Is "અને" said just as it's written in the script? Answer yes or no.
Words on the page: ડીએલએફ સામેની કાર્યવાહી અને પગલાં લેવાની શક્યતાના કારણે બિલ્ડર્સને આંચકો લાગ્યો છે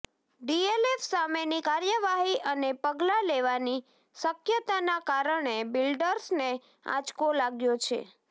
yes